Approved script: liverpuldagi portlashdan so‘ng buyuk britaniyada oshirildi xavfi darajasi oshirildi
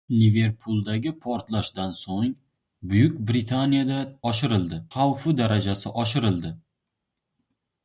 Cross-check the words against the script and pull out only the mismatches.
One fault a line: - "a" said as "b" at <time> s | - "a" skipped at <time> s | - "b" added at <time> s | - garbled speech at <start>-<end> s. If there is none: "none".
none